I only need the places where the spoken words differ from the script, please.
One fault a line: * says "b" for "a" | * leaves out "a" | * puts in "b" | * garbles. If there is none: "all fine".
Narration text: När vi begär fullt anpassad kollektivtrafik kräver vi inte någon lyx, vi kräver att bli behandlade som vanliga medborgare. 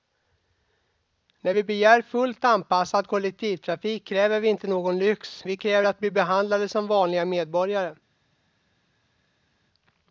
all fine